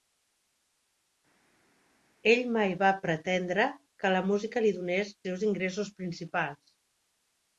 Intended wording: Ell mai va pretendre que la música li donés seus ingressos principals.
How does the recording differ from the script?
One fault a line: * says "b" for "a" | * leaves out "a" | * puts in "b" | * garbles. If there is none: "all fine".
all fine